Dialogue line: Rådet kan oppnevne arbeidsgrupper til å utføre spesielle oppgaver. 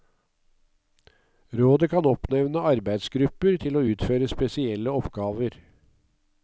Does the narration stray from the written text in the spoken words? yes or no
no